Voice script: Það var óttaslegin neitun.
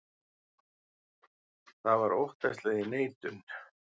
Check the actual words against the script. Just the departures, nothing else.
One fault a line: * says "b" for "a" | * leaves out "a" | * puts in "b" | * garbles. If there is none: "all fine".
all fine